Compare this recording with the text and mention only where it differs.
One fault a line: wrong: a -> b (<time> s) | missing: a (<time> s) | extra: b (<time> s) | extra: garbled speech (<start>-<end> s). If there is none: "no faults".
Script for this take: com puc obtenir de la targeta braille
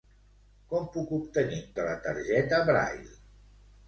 no faults